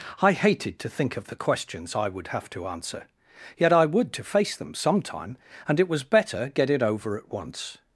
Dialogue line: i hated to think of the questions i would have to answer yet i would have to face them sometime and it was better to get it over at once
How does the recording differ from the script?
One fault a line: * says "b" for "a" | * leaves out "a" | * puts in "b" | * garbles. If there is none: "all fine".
* leaves out "have"
* leaves out "to"